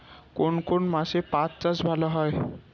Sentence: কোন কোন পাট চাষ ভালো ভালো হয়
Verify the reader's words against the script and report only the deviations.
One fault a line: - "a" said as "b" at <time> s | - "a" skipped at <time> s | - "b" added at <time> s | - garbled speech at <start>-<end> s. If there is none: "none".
- "মাসে" added at 0.9 s
- "ভালো" skipped at 2.1 s